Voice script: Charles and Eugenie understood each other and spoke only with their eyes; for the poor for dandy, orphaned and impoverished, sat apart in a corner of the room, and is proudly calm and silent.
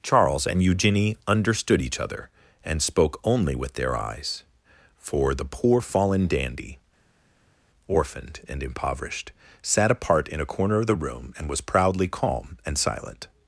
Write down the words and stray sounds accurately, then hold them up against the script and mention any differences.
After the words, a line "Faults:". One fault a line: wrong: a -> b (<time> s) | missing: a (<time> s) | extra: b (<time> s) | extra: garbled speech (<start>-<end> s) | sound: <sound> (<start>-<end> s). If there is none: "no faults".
Charles and Eugenie understood each other and spoke only with their eyes; for the poor fallen dandy, orphaned and impoverished, sat apart in a corner of the room, and was proudly calm and silent.
Faults:
wrong: for -> fallen (5.8 s)
wrong: is -> was (11.5 s)